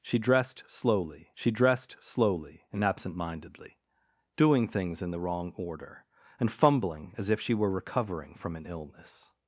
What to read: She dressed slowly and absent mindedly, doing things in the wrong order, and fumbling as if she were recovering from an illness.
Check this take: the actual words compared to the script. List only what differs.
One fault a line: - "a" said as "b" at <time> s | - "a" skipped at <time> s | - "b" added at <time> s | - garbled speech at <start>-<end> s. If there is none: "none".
- "she dressed slowly" added at 1.3 s